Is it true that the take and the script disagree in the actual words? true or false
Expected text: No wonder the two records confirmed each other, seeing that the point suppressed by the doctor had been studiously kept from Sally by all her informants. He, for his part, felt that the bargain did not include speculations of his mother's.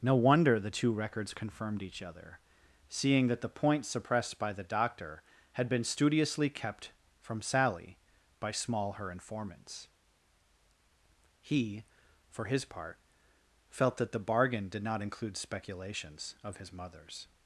true